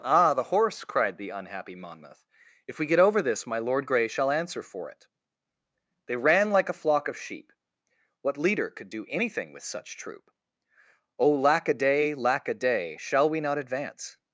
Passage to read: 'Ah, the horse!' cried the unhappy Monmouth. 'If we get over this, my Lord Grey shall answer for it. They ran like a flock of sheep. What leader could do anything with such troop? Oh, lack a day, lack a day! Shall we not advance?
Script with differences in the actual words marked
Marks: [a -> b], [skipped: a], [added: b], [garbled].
'Ah, the horse!' cried the unhappy Monmouth. 'If we get over this, my Lord Grey shall answer for it. They ran like a flock of sheep. What leader could do anything with such troop? Oh, lack a day, lack a day! Shall we not advance?